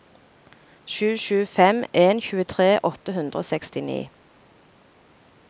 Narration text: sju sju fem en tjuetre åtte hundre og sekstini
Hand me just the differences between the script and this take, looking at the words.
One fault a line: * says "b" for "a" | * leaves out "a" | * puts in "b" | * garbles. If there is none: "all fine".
all fine